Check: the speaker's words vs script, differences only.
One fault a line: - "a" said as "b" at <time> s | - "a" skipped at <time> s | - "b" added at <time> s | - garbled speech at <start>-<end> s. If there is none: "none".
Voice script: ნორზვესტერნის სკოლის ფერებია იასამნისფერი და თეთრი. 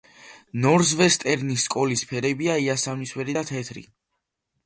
none